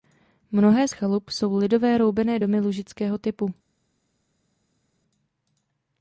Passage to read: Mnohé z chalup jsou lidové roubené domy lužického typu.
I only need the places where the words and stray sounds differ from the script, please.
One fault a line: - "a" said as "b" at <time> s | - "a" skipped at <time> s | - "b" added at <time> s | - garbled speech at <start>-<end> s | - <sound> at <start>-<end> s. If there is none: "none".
none